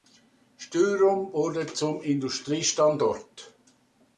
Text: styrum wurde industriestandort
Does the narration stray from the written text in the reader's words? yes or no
yes